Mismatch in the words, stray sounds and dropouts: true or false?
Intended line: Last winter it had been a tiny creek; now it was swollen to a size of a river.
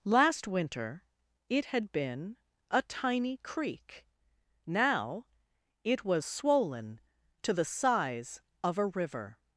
true